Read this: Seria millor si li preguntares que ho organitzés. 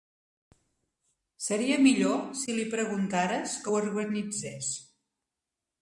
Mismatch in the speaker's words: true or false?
false